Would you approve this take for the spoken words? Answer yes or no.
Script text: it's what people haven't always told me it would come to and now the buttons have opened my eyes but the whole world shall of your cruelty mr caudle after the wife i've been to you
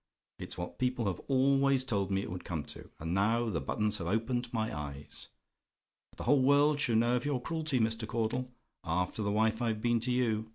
no